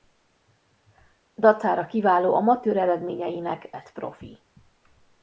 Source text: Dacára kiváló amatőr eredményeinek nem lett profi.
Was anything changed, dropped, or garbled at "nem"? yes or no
yes